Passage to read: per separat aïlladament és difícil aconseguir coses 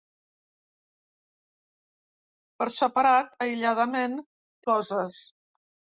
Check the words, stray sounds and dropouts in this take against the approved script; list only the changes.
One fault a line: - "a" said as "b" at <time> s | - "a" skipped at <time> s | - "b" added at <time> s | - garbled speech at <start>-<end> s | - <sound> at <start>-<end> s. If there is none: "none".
- "és difícil aconseguir" skipped at 4.1 s